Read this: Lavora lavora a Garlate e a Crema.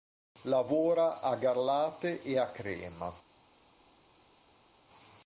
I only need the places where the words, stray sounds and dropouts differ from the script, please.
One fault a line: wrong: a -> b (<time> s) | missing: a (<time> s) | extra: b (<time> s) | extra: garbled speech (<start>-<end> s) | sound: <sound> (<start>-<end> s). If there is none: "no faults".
missing: lavora (1.2 s)